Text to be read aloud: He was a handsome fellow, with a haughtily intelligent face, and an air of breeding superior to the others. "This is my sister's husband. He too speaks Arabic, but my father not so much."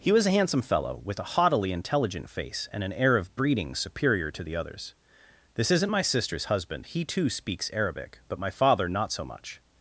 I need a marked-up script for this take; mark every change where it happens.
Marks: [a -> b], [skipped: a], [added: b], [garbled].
He was a handsome fellow, with a haughtily intelligent face, and an air of breeding superior to the others. "This [is -> isn't] my sister's husband. He too speaks Arabic, but my father not so much."